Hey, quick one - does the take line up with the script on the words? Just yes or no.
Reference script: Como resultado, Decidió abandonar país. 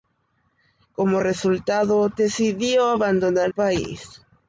yes